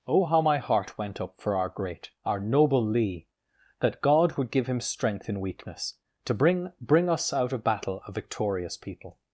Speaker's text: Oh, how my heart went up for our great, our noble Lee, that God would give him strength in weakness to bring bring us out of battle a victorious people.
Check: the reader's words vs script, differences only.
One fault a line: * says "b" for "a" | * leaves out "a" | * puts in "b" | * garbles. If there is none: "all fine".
all fine